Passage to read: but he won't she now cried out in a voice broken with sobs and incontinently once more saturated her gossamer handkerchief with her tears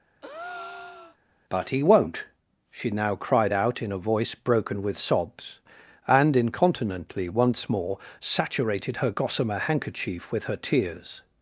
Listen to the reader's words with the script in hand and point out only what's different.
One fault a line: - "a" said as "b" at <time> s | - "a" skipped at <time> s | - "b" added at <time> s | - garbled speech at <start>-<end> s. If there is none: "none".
none